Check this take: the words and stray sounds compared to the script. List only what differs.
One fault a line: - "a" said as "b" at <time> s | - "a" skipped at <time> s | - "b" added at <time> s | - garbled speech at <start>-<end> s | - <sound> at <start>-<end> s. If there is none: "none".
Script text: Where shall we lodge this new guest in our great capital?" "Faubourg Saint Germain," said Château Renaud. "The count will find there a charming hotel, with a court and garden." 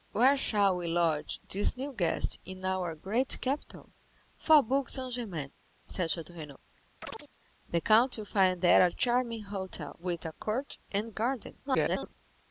- chirp at 7.0-7.3 s
- garbled speech at 11.6-12.1 s